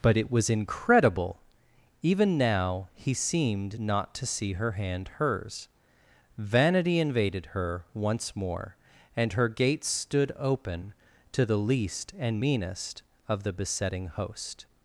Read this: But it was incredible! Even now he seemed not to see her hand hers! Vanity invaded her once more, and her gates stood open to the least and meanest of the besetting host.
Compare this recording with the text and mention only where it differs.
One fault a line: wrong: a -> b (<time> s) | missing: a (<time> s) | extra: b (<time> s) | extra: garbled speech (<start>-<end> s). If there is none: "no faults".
no faults